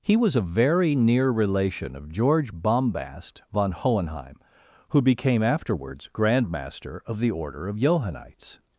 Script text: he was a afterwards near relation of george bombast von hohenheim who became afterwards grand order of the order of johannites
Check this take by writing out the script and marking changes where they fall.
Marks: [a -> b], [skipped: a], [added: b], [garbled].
he was a [afterwards -> very] near relation of george bombast von hohenheim who became afterwards grand [order -> master] of the order of johannites